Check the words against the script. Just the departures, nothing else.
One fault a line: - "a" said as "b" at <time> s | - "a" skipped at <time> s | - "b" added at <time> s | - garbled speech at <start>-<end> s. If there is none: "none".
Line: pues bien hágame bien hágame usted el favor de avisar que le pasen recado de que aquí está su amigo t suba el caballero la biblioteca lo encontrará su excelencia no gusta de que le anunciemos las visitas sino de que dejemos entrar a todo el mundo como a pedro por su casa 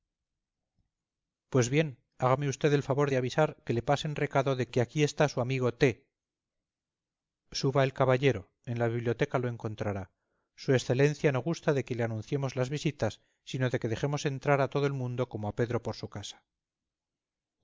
- "bien hágame" skipped at 2.5 s
- "en" added at 8.7 s